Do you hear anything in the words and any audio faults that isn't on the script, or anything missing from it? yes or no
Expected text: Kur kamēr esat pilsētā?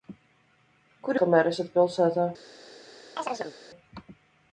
yes